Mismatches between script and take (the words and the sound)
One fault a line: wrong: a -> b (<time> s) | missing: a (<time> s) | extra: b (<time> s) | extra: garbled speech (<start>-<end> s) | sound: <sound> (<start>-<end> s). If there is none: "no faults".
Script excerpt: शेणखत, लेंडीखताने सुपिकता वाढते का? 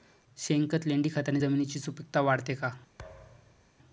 extra: जमिनीची (1.4 s)
sound: thud (3.0-3.7 s)